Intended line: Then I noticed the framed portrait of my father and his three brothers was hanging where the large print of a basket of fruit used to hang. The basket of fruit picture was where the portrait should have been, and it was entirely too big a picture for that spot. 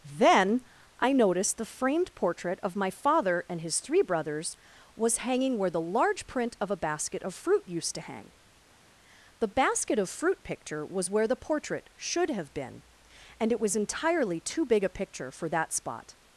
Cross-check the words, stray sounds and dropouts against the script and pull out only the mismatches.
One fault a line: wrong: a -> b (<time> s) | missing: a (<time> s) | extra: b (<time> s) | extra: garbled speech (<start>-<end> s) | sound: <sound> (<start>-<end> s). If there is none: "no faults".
no faults